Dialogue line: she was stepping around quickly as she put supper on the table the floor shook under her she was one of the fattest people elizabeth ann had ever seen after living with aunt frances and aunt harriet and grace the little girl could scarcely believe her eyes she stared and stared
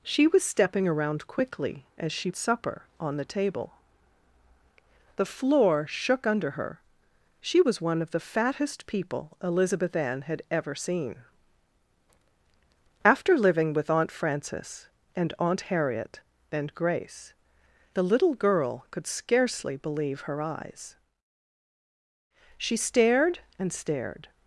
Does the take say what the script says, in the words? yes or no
no